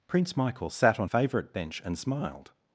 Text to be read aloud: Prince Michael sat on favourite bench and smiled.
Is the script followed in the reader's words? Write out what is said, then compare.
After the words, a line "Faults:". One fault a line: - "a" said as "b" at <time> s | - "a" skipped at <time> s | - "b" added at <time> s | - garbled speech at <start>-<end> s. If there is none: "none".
Prince Michael sat on favourite bench and smiled.
Faults:
none